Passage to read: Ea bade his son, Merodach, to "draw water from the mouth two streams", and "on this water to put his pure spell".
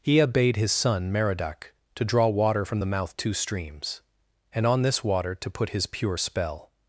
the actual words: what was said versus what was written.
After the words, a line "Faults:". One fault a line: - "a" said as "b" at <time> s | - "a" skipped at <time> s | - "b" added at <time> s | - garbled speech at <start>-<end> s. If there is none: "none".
Ea bade his son, Merodach, to "draw water from the mouth two streams", and "on this water to put his pure spell".
Faults:
none